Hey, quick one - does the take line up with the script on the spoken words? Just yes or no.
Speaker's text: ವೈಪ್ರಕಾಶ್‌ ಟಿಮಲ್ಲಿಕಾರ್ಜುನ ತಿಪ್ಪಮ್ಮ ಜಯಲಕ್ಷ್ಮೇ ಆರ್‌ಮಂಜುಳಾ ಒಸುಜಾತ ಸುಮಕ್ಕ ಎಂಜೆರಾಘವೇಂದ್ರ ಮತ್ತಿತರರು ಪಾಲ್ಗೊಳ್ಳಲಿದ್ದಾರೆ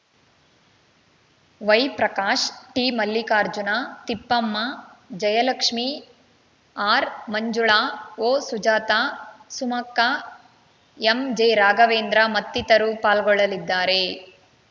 yes